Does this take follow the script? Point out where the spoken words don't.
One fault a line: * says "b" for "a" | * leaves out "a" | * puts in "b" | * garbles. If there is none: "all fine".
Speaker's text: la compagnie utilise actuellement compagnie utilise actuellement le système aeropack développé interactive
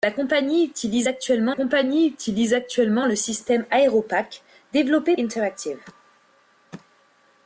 all fine